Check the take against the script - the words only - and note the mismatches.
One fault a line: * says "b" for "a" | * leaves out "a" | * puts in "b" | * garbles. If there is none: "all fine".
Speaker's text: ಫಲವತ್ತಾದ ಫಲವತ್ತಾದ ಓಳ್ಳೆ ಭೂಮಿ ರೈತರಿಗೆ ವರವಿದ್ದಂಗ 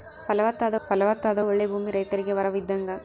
all fine